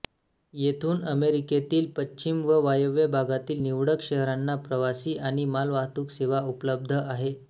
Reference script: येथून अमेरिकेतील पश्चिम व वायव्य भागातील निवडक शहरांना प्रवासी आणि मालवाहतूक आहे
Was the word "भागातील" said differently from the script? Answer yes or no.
no